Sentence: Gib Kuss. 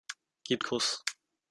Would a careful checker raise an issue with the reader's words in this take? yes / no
no